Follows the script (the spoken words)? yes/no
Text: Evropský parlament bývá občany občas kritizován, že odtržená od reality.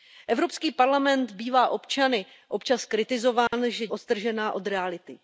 yes